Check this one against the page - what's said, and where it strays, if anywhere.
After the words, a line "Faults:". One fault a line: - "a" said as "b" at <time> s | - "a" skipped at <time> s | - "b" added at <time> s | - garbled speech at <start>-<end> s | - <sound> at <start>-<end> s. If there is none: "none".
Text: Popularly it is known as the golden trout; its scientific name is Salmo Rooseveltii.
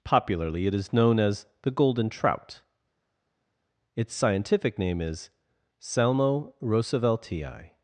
Popularly it is known as the golden trout; its scientific name is Salmo Rooseveltii.
Faults:
none